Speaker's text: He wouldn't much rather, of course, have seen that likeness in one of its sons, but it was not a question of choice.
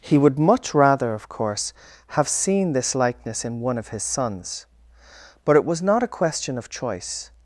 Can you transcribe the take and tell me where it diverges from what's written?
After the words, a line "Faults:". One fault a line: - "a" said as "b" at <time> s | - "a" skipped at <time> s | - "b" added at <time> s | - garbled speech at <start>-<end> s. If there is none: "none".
He would much rather, of course, have seen this likeness in one of his sons, but it was not a question of choice.
Faults:
- "wouldn't" said as "would" at 0.2 s
- "that" said as "this" at 2.7 s
- "its" said as "his" at 3.9 s